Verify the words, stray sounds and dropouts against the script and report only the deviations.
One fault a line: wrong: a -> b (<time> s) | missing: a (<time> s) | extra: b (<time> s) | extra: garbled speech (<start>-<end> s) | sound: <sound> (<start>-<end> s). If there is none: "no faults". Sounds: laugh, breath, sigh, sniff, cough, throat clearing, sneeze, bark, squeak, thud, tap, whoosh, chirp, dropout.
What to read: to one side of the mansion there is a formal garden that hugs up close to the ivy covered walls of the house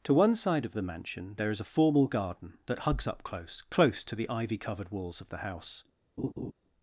extra: close (3.7 s)
sound: laugh (6.2-6.5 s)